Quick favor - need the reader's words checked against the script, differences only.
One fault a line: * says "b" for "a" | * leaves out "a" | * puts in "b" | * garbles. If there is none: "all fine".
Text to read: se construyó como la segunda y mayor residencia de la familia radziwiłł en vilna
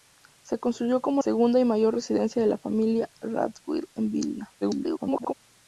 * leaves out "la"
* garbles